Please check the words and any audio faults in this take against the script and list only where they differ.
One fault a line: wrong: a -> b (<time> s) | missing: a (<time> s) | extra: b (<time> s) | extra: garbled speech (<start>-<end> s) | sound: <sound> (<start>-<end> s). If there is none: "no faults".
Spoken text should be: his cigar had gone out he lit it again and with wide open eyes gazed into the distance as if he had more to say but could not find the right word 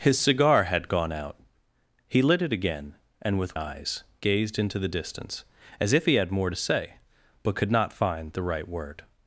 missing: wide open (3.6 s)